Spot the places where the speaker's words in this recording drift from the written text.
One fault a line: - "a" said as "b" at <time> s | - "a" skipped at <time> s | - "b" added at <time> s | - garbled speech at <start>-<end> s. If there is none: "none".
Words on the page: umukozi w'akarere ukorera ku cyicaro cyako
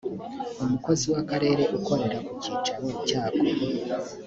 none